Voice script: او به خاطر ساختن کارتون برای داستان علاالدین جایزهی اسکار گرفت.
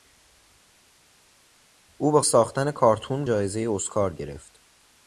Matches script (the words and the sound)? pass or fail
fail